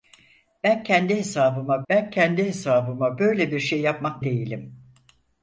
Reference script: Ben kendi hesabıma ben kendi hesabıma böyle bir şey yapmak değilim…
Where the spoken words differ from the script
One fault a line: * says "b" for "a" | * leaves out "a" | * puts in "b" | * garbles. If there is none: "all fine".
all fine